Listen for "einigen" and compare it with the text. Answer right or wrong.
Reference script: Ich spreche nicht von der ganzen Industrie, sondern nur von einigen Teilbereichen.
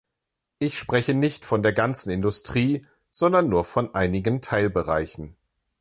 right